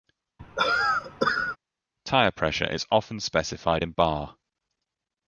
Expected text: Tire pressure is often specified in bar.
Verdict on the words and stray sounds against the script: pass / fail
fail